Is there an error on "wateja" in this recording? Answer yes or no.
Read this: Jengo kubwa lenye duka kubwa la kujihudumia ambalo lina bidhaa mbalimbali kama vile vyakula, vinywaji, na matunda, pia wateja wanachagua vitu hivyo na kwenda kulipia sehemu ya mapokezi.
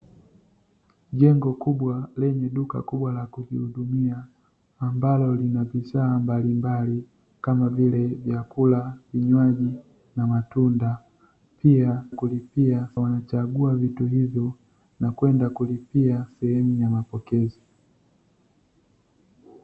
yes